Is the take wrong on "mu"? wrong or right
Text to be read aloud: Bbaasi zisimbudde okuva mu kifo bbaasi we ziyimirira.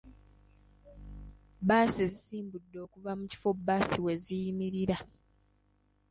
right